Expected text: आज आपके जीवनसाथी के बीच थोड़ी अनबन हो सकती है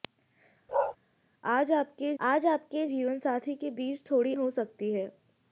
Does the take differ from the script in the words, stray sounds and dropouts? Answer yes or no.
yes